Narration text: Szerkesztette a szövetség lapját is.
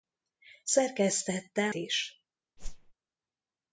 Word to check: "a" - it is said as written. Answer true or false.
false